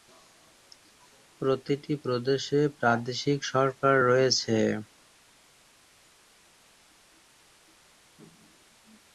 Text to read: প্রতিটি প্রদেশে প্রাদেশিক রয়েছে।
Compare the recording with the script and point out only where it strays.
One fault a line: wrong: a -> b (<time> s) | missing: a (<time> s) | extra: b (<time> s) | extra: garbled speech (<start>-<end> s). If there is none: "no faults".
extra: সরকার (3.5 s)